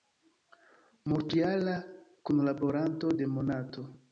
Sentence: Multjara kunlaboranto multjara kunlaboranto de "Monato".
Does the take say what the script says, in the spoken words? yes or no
no